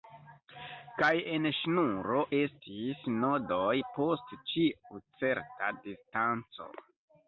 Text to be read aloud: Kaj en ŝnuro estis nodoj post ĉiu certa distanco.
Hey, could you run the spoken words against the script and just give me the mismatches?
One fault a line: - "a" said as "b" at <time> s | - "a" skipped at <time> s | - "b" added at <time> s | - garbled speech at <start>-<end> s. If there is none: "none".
none